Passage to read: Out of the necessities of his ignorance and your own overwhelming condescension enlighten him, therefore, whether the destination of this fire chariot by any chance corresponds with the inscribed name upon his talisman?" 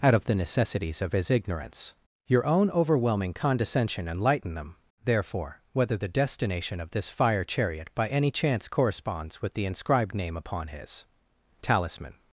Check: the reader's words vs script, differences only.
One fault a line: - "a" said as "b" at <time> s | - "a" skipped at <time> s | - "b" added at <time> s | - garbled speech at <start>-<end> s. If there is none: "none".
- "and" skipped at 1.9 s
- "him" said as "them" at 4.5 s